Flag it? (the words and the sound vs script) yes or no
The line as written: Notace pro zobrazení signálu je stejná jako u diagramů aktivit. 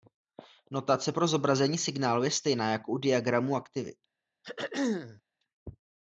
yes